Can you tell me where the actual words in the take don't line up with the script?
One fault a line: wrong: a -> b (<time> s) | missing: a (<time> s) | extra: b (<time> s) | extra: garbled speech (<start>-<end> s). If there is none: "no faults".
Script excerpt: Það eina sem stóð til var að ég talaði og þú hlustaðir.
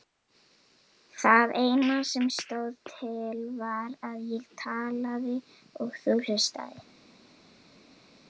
no faults